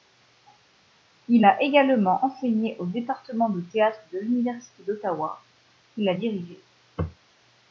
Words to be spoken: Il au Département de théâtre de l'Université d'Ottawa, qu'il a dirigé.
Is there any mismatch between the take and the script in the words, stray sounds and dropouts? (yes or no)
yes